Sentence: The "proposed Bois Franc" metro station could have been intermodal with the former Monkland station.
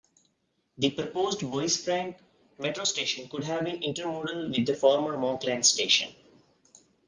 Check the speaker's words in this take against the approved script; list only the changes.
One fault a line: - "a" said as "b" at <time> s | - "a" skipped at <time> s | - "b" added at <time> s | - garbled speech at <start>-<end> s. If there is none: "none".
none